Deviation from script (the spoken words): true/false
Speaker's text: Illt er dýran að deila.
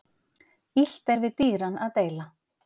true